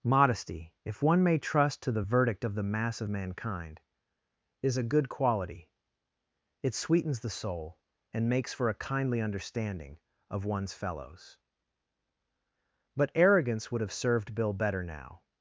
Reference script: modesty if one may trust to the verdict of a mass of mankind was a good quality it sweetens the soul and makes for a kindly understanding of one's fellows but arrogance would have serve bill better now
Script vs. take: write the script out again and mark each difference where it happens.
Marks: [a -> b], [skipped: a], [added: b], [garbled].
modesty if one may trust to the verdict of [a -> the] mass of mankind [was -> is] a good quality it sweetens the soul and makes for a kindly understanding of one's fellows but arrogance would have [serve -> served] bill better now